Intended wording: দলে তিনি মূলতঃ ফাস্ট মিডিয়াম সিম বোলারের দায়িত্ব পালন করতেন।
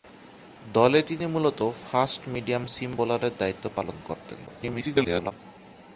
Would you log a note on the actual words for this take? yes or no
yes